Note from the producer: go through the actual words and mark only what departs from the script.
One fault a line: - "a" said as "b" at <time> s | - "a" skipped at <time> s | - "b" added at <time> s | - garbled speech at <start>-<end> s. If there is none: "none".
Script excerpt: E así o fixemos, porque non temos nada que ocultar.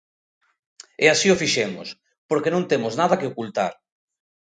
none